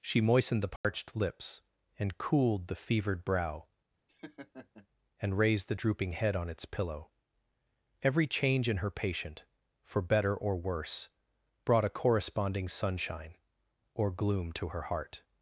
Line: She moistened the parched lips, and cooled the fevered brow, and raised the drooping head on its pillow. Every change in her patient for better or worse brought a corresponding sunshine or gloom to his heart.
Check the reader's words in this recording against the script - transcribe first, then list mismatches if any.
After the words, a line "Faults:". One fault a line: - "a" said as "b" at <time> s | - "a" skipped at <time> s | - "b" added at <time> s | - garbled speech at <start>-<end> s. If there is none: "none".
She moistened the parched lips, and cooled the fevered brow, and raised the drooping head on its pillow. Every change in her patient for better or worse brought a corresponding sunshine or gloom to her heart.
Faults:
- "his" said as "her" at 14.7 s